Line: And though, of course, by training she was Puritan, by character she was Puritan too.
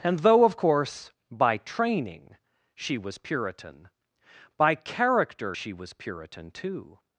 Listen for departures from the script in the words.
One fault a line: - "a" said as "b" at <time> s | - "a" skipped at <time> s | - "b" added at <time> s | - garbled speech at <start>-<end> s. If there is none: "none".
none